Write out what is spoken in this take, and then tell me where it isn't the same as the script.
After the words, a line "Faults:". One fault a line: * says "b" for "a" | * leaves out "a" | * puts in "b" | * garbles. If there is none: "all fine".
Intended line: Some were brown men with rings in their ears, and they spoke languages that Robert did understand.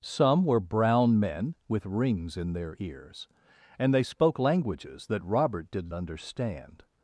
Some were brown men with rings in their ears, and they spoke languages that Robert did understand.
Faults:
all fine